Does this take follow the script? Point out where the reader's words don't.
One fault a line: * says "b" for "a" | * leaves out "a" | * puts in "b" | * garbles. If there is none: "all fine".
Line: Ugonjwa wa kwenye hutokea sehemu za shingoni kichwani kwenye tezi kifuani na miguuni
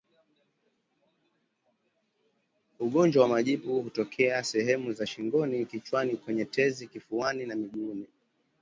* says "majipu" for "kwenye"